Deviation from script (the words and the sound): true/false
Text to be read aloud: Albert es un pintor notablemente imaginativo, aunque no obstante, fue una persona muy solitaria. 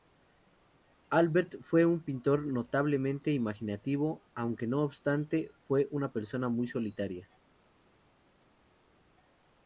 true